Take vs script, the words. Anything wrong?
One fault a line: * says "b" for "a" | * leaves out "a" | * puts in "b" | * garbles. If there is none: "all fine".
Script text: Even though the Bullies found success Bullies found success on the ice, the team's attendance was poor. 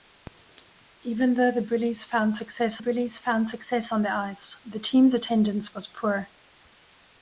all fine